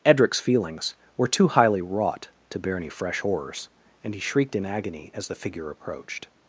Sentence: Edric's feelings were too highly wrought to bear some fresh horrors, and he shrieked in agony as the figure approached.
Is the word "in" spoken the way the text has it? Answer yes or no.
yes